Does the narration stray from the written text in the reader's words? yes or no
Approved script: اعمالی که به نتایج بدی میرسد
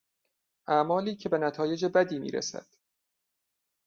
no